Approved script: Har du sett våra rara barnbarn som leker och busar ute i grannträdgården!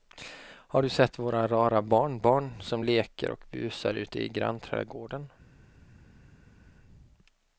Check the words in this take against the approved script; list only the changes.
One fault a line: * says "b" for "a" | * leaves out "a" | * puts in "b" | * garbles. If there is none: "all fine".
all fine